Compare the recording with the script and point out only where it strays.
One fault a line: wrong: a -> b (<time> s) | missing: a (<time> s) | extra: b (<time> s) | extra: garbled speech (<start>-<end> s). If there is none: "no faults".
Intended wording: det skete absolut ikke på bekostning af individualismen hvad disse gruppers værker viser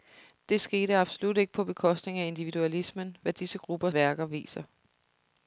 no faults